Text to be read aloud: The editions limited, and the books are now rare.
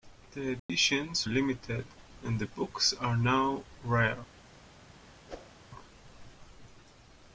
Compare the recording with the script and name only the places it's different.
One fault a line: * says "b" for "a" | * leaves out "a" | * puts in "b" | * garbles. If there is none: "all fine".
all fine